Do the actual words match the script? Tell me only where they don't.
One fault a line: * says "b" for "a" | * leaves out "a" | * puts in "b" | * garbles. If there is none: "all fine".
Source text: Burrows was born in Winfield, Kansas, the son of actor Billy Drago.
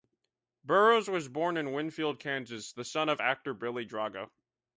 all fine